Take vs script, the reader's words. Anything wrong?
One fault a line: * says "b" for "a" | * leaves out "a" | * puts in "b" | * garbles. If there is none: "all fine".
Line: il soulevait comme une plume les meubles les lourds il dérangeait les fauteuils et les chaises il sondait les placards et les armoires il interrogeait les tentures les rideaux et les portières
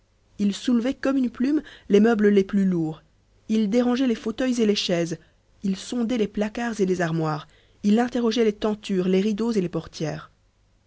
* puts in "plus"